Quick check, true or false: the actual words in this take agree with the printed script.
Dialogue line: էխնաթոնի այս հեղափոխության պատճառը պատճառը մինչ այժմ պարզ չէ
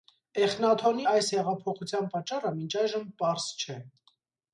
false